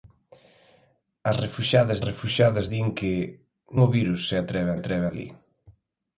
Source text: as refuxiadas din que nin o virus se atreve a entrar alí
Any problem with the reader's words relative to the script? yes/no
yes